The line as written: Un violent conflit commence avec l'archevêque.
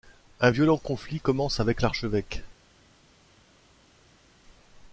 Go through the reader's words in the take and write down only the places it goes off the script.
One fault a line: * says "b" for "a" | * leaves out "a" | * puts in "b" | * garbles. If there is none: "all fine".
all fine